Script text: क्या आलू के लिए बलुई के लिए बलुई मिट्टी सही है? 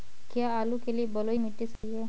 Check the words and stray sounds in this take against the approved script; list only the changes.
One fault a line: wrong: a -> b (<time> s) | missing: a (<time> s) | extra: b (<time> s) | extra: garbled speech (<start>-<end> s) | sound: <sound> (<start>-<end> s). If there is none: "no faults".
missing: के लिए बलुई (1.4 s)
sound: dropout (1.8-1.8 s)